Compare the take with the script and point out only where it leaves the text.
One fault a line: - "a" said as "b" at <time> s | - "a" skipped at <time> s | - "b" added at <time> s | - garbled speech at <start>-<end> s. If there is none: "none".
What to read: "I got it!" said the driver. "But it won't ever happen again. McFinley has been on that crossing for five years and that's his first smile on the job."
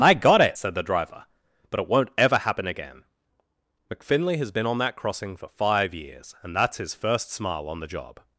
none